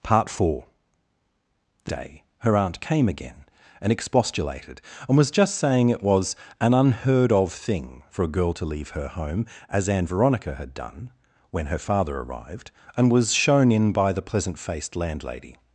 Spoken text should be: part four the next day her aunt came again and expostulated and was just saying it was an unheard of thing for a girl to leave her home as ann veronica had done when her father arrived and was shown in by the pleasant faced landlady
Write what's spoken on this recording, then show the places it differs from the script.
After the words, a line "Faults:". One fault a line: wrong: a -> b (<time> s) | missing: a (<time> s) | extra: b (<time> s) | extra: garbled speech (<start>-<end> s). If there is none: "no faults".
part four the day her aunt came again and expostulated and was just saying it was an unheard of thing for a girl to leave her home as ann veronica had done when her father arrived and was shown in by the pleasant faced landlady
Faults:
missing: next (1.9 s)